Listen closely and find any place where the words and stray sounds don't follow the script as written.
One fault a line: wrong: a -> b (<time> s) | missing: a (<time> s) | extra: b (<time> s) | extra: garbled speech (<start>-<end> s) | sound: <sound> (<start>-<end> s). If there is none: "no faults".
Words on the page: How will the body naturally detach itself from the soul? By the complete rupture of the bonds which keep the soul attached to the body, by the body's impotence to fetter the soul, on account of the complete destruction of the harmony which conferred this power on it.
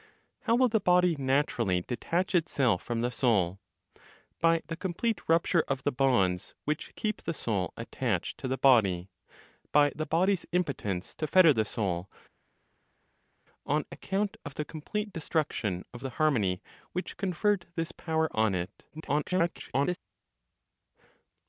extra: garbled speech (18.9-20.0 s)